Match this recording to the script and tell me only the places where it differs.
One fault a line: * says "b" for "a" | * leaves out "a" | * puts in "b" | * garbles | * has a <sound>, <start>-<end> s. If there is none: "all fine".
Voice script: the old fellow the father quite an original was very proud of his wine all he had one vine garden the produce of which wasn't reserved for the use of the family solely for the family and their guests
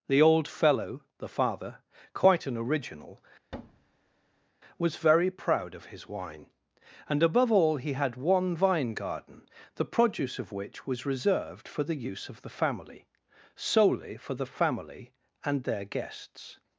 * has a thud, 3.5-4.5 s
* puts in "and above"
* says "was" for "wasn't"